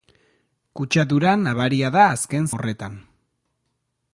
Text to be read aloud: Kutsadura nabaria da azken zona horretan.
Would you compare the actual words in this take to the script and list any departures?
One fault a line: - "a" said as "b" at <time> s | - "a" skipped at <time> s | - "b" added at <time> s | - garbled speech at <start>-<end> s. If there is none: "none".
- "zona" skipped at 2.5 s